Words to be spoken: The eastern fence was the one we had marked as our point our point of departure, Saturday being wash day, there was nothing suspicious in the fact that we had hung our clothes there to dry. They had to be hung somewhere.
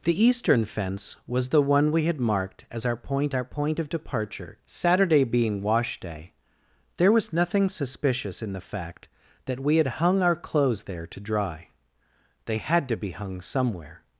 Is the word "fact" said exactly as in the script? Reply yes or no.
yes